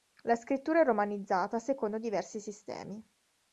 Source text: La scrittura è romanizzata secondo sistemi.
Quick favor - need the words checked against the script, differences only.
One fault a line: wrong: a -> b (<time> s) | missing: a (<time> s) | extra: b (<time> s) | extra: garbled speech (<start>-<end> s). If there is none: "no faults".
extra: diversi (2.0 s)